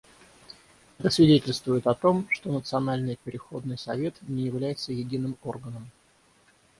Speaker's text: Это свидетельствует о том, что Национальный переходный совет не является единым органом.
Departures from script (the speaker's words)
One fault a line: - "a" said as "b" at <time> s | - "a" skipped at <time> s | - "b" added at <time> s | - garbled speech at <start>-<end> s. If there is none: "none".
none